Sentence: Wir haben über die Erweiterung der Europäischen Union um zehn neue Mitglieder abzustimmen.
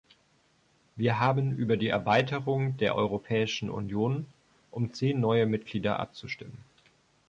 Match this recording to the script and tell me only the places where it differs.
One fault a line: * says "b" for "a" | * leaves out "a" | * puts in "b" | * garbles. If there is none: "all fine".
all fine